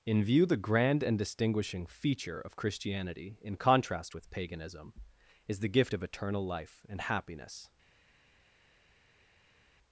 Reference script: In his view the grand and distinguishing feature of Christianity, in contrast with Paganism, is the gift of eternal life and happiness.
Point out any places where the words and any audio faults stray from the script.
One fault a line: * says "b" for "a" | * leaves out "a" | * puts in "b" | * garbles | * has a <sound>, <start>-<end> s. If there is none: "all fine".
* leaves out "his"